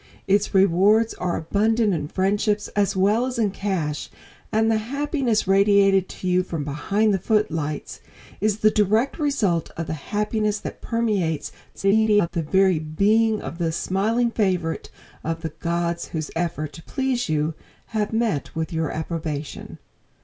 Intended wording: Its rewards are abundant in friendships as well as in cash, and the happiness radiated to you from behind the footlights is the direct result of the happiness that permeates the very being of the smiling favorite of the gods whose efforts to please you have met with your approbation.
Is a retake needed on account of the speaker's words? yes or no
yes